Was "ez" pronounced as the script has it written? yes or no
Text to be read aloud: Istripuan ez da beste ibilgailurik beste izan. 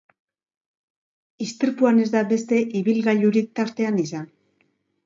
yes